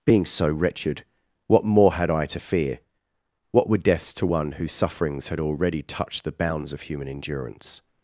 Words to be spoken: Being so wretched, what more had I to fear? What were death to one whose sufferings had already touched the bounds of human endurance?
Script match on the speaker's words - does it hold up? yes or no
no